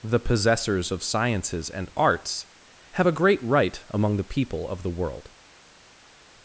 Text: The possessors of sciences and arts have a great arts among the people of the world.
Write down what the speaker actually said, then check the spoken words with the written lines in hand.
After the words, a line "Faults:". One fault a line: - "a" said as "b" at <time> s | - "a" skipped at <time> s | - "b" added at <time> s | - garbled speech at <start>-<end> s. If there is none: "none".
The possessors of sciences and arts have a great right among the people of the world.
Faults:
- "arts" said as "right" at 3.4 s